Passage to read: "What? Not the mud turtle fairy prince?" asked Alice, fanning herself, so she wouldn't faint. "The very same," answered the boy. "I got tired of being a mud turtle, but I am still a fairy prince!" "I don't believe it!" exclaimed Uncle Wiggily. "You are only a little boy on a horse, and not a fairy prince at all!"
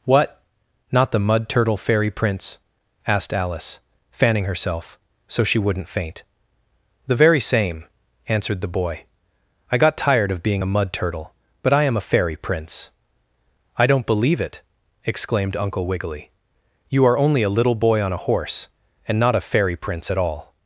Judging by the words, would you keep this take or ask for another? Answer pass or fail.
fail